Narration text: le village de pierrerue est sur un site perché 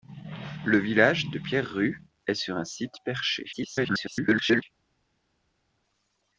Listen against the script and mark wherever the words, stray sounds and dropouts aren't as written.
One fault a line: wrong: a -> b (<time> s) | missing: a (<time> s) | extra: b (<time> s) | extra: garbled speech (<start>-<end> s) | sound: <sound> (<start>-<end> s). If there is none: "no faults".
extra: garbled speech (3.5-4.6 s)